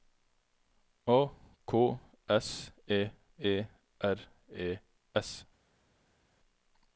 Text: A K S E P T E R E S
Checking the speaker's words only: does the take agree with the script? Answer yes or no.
no